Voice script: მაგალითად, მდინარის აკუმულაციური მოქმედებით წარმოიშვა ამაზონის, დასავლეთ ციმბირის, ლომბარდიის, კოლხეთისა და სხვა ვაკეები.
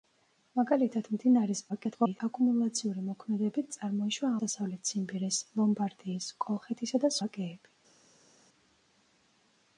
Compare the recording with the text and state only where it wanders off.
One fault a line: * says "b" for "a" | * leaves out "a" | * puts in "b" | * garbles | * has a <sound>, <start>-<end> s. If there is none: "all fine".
* garbles
* leaves out "ამაზონის"
* leaves out "სხვა"